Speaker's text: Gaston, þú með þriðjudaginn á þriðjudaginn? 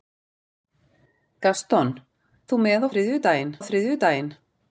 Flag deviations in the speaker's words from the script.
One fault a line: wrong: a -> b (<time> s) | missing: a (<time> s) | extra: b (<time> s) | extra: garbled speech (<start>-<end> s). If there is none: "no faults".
no faults